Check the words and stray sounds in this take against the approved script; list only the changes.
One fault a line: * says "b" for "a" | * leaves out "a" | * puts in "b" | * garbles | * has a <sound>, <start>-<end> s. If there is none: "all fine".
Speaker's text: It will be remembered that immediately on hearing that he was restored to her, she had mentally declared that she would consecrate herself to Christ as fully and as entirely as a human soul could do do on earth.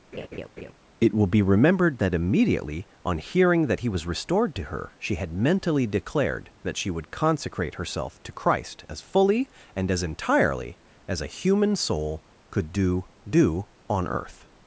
* has a laugh, 0.1-0.7 s